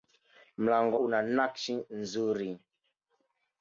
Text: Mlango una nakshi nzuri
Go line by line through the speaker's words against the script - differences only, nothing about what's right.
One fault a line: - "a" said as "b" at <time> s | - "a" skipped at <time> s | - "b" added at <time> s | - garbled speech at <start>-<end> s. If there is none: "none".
none